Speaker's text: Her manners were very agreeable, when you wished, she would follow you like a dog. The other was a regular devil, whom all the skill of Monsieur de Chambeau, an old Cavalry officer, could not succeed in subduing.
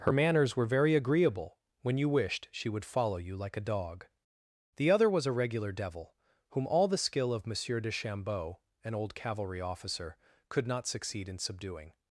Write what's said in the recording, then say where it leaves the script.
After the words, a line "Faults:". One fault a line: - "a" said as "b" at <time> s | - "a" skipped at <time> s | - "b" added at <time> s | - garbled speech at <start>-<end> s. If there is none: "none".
Her manners were very agreeable, when you wished, she would follow you like a dog. The other was a regular devil, whom all the skill of Monsieur de Chambeau, an old Cavalry officer, could not succeed in subduing.
Faults:
none